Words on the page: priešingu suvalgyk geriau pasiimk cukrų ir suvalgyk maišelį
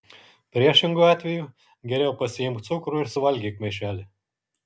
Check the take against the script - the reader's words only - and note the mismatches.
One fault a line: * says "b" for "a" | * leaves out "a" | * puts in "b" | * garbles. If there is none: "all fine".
* says "atveju" for "suvalgyk"